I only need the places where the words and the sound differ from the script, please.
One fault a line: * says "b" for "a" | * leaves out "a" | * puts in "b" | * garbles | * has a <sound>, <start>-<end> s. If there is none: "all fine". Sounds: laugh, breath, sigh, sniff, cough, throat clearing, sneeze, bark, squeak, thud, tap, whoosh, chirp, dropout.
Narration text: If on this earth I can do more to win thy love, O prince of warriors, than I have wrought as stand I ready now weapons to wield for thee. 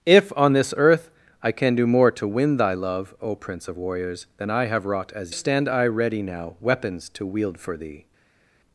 all fine